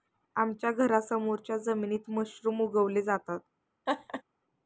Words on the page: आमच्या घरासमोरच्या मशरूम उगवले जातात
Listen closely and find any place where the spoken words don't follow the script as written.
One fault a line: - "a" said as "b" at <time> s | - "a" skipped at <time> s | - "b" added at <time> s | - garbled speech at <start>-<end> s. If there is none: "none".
- "जमिनीत" added at 1.6 s